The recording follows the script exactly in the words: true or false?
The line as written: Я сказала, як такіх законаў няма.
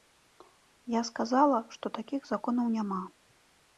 false